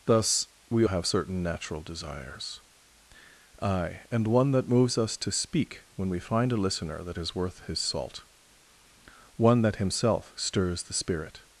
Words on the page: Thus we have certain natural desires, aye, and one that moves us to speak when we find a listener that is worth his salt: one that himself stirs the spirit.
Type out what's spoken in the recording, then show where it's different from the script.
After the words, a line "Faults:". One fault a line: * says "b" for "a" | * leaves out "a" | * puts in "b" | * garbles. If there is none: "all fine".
Thus we have certain natural desires, aye, and one that moves us to speak when we find a listener that is worth his salt: one that himself stirs the spirit.
Faults:
all fine